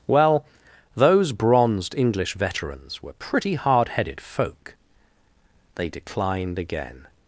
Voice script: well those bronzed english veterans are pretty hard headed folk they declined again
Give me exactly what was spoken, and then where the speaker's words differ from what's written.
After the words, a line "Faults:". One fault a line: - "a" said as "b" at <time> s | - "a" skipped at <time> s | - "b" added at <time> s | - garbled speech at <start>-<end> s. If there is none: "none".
well those bronzed english veterans were pretty hard headed folk they declined again
Faults:
- "are" said as "were" at 3.0 s